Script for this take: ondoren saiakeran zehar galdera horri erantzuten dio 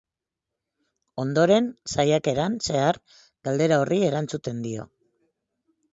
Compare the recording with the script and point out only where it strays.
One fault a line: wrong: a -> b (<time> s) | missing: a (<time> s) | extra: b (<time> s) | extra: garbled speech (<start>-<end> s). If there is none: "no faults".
no faults